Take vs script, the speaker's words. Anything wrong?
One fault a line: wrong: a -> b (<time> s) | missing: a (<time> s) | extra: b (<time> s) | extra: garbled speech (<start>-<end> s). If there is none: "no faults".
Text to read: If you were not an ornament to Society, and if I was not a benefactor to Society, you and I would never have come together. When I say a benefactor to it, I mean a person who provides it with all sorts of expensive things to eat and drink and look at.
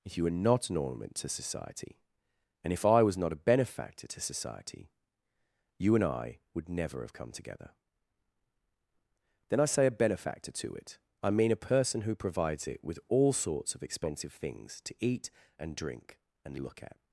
wrong: When -> Then (9.5 s)